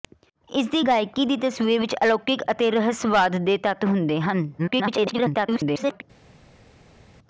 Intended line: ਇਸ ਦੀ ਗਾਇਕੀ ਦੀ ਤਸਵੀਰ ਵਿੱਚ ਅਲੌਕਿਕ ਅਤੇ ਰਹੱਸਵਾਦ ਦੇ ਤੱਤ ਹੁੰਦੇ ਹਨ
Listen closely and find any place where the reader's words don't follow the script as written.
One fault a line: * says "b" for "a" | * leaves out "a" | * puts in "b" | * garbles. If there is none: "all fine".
* garbles